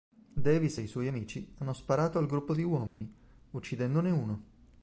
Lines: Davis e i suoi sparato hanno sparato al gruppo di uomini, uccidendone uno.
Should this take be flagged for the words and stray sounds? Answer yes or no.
yes